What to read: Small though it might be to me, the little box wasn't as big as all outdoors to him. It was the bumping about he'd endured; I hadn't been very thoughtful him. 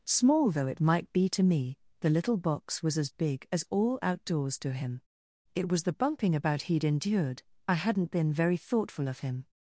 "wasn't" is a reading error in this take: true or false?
true